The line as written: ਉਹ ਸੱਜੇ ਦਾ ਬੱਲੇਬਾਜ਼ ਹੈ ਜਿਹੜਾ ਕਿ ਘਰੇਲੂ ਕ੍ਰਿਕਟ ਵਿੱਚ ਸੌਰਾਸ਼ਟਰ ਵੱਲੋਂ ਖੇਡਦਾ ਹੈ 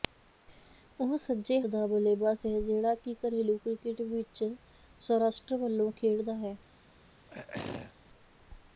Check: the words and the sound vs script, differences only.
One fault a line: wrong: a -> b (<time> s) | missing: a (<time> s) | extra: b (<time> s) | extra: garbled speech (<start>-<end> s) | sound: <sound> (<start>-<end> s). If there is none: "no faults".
sound: throat clearing (7.3-8.0 s)